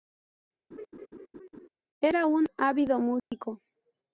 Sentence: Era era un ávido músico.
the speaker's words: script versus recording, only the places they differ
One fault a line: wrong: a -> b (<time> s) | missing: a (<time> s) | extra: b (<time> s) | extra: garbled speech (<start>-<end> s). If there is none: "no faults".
missing: era (2.3 s)